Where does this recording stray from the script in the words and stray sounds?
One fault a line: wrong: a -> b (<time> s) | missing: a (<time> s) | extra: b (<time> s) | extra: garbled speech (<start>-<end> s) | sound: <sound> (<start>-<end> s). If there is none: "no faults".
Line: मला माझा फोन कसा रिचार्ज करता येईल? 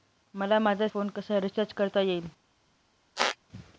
sound: squeak (3.2-3.4 s)